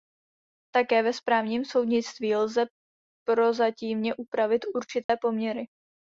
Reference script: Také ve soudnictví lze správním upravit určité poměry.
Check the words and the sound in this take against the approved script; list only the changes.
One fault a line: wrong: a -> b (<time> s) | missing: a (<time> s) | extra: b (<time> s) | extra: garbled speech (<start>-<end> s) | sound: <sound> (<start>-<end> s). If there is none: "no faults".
extra: správním (1.1 s)
wrong: správním -> prozatímně (3.3 s)
sound: dropout (5.0-5.1 s)